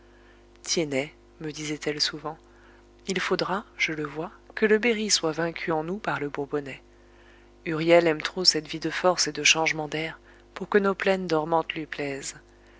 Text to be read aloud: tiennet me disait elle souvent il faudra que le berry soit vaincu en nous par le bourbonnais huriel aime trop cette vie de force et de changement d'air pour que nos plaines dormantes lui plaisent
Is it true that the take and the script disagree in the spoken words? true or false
true